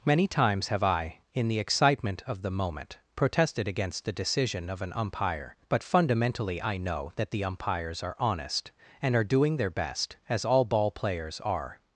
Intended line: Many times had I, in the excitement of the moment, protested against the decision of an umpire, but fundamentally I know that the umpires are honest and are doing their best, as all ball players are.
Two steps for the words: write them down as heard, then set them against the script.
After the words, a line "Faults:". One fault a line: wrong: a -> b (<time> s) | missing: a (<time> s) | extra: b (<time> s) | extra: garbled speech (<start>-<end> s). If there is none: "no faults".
Many times have I, in the excitement of the moment, protested against the decision of an umpire, but fundamentally I know that the umpires are honest and are doing their best, as all ball players are.
Faults:
wrong: had -> have (0.7 s)